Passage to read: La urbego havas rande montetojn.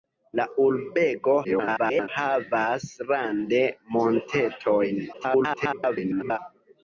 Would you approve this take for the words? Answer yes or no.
no